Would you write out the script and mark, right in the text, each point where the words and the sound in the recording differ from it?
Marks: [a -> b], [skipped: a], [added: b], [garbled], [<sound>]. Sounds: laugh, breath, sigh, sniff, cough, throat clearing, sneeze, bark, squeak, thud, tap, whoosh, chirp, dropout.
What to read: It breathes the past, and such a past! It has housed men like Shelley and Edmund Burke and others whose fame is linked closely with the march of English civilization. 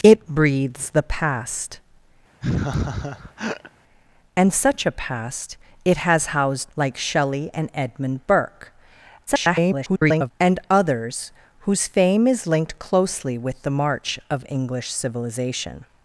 It breathes the past, [laugh] and such a past! It has housed [skipped: men] like Shelley and Edmund Burke [garbled] and others whose fame is linked closely with the march of English civilization.